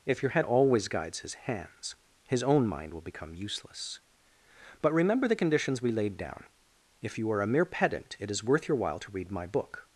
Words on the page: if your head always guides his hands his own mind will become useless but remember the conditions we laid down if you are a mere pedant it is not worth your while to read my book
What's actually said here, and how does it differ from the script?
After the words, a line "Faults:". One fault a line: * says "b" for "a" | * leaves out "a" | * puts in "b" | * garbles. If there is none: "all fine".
if your head always guides his hands his own mind will become useless but remember the conditions we laid down if you are a mere pedant it is worth your while to read my book
Faults:
* leaves out "not"